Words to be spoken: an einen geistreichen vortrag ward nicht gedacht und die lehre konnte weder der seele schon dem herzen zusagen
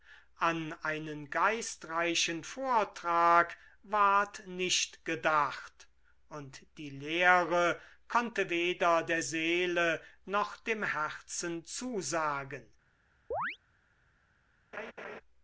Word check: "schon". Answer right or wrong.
wrong